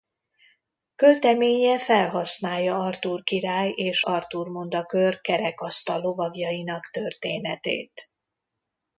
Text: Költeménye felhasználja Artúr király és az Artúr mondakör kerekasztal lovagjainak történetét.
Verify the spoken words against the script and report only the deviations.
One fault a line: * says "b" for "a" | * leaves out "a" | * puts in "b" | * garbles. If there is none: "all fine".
* leaves out "az"